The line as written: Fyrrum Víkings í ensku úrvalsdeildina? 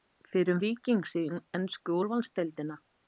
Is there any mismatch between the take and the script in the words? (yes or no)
no